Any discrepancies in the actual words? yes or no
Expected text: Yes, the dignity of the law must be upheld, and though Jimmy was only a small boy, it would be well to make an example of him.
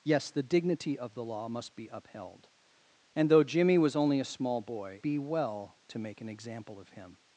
yes